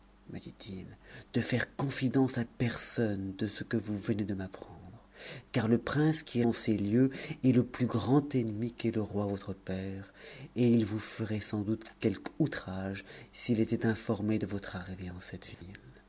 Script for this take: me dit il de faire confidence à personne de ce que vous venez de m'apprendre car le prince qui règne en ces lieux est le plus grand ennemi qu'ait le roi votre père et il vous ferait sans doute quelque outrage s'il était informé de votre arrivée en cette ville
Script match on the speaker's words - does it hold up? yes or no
no